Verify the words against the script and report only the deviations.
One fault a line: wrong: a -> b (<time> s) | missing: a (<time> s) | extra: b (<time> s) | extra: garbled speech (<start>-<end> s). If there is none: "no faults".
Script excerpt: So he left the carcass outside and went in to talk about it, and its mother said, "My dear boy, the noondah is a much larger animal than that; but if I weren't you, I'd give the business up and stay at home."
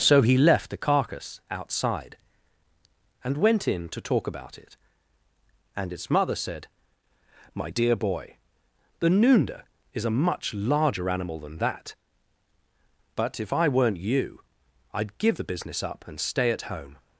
no faults